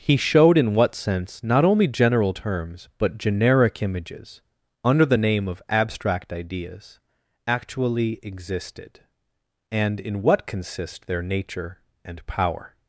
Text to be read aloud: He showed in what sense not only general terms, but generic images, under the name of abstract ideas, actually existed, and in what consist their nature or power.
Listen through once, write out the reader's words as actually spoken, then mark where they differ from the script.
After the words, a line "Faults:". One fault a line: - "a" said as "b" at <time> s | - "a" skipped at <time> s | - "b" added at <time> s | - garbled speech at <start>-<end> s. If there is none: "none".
He showed in what sense not only general terms, but generic images, under the name of abstract ideas, actually existed, and in what consist their nature and power.
Faults:
- "or" said as "and" at 12.0 s